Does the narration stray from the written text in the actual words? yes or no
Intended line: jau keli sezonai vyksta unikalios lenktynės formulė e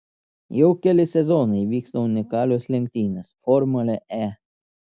no